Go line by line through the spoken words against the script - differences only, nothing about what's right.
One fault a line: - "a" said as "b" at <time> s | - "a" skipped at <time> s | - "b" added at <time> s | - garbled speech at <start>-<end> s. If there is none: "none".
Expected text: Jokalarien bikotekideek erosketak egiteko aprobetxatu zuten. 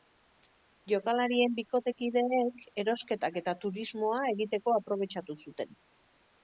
- "eta turismoa" added at 3.4 s